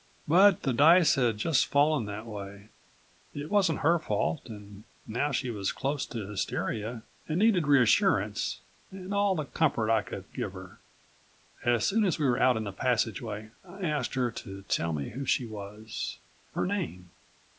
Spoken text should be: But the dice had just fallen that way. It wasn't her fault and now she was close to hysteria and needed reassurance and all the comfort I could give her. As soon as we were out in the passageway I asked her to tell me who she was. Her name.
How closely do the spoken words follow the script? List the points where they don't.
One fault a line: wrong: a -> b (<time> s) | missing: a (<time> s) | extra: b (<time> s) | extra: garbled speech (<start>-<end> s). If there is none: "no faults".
no faults